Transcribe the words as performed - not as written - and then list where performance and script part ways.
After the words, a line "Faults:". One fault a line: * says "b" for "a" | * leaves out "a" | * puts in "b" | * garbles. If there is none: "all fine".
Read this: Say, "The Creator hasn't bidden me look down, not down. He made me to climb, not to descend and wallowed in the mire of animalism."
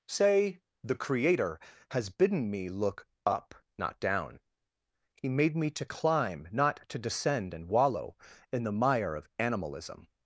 Say, "The Creator has bidden me look up, not down. He made me to climb, not to descend and wallow in the mire of animalism."
Faults:
* says "has" for "hasn't"
* says "up" for "down"
* says "wallow" for "wallowed"